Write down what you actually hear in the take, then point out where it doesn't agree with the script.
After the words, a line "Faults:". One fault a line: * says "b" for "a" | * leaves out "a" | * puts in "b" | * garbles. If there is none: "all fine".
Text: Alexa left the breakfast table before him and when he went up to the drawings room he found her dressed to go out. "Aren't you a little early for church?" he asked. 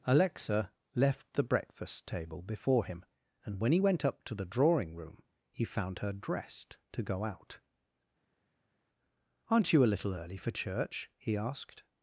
Alexa left the breakfast table before him and when he went up to the drawing room he found her dressed to go out. "Aren't you a little early for church?" he asked.
Faults:
* says "drawing" for "drawings"